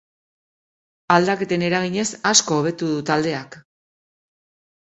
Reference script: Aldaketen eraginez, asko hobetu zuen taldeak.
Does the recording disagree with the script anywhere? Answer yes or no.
yes